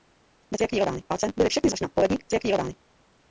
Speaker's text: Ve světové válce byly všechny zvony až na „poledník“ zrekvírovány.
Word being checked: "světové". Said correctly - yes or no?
no